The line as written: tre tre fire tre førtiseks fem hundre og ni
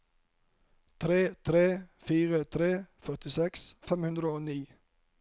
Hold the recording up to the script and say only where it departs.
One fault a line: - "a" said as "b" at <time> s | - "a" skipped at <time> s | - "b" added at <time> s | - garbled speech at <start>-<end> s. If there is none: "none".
none